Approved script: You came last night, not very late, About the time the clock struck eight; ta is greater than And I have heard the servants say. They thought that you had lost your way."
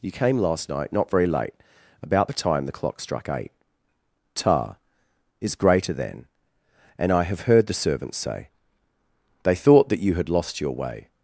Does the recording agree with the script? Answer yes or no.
yes